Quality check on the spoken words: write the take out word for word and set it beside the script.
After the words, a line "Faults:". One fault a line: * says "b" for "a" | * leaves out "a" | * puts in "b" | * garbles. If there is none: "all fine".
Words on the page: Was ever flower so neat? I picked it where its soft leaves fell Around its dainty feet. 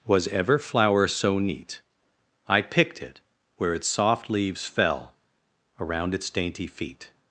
Was ever flower so neat? I picked it where its soft leaves fell Around its dainty feet.
Faults:
all fine